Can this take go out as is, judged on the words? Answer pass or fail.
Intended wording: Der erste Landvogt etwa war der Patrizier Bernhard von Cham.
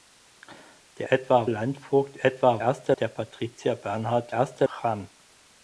fail